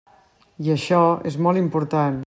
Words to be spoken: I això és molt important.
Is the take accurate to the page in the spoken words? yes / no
yes